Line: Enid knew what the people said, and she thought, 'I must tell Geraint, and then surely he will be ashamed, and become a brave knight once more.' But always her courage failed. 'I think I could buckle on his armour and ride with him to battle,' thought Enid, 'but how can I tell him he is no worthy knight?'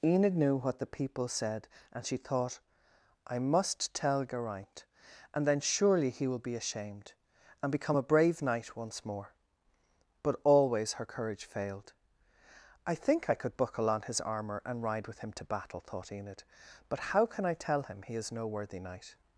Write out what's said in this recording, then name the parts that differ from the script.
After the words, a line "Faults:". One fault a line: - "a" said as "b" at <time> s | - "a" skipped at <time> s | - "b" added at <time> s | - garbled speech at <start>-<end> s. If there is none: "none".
Enid knew what the people said, and she thought, 'I must tell Geraint, and then surely he will be ashamed, and become a brave knight once more.' But always her courage failed. 'I think I could buckle on his armour and ride with him to battle,' thought Enid, 'but how can I tell him he is no worthy knight?'
Faults:
none